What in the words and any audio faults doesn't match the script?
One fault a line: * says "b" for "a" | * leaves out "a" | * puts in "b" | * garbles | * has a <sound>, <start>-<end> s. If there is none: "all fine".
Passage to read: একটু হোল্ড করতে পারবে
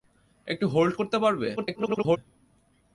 * garbles